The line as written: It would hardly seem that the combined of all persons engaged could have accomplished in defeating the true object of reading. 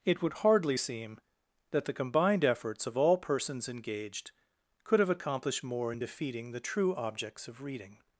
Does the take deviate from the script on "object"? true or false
true